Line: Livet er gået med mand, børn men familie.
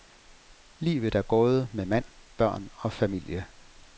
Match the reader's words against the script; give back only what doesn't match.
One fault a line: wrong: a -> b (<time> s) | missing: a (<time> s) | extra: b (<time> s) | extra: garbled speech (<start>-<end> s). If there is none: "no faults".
wrong: men -> og (2.8 s)